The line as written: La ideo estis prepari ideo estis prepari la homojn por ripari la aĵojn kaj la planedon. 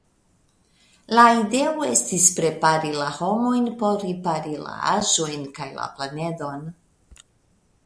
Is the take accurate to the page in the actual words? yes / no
no